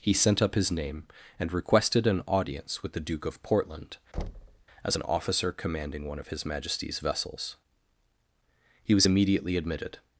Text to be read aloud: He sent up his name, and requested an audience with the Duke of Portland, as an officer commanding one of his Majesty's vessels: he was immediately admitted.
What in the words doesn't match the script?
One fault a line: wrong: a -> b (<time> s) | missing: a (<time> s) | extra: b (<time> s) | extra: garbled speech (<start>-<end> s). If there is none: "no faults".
no faults